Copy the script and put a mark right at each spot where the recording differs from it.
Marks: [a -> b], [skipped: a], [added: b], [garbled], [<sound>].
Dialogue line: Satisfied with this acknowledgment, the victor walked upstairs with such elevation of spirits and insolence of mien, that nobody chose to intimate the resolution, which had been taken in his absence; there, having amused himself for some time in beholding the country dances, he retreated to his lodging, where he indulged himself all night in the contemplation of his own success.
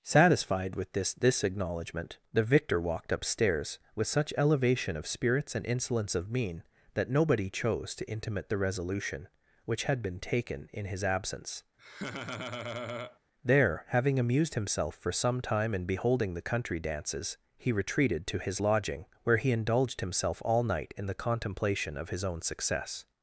Satisfied with this [added: this] acknowledgment, the victor walked upstairs with such elevation of spirits and insolence of mien, that nobody chose to intimate the resolution, which had been taken in his absence; [laugh] there, having amused himself for some time in beholding the country dances, he retreated to his lodging, where he indulged himself all night in the contemplation of his own success.